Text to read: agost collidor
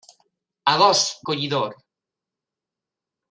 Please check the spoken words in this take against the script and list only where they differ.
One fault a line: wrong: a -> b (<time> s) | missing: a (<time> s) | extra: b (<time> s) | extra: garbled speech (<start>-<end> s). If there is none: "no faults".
no faults